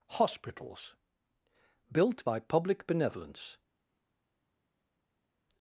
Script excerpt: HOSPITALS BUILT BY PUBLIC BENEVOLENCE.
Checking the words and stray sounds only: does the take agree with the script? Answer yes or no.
yes